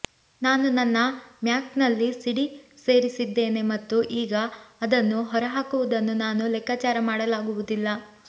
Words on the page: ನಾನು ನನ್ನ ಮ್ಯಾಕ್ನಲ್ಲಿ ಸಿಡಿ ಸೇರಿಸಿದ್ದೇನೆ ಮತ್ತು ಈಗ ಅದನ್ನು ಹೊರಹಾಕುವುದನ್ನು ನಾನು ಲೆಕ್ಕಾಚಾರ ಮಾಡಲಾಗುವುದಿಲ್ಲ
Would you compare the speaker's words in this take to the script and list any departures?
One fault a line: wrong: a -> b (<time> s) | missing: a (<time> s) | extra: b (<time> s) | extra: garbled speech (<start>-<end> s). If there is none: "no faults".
no faults